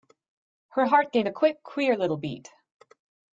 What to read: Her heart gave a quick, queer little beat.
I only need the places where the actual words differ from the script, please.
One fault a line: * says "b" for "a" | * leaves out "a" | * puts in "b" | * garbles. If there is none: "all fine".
all fine